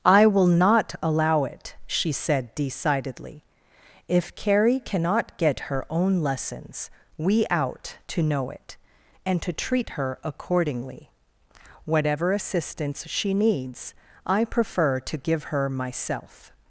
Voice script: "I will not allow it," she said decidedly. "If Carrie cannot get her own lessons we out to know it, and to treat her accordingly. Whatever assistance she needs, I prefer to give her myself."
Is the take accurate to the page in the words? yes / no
yes